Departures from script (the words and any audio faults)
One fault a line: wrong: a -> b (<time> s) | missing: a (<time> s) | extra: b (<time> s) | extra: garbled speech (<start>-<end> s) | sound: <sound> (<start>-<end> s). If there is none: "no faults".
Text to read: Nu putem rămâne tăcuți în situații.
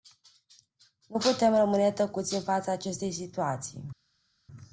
extra: fața acestei (2.4 s)